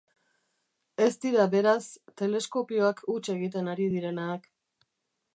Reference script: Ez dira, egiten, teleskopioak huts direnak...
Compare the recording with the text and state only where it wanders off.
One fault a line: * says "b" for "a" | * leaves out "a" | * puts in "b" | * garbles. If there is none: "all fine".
* says "beraz" for "egiten"
* puts in "egiten ari"